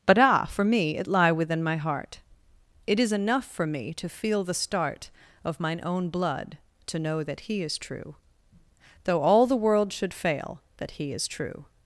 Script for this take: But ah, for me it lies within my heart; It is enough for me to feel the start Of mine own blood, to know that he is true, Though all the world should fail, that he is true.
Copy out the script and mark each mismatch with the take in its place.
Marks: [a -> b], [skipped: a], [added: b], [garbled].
But ah, for me it [lies -> lie] within my heart; It is enough for me to feel the start Of mine own blood, to know that he is true, Though all the world should fail, that he is true.